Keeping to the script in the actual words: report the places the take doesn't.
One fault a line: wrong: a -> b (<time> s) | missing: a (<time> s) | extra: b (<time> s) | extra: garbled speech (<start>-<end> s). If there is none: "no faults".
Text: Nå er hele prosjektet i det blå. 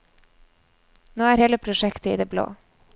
no faults